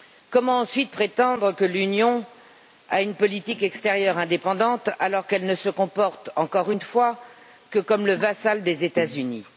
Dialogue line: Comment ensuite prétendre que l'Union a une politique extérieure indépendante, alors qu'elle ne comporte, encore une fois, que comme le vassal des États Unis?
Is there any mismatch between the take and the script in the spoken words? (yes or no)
yes